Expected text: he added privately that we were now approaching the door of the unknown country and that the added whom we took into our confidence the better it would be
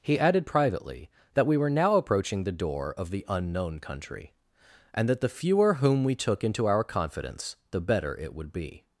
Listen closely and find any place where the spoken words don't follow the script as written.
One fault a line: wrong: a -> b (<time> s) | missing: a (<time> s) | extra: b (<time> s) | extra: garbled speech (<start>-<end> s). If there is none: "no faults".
wrong: added -> fewer (5.3 s)